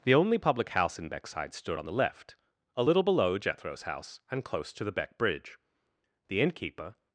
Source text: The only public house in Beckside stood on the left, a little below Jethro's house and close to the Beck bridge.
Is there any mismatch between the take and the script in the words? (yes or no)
yes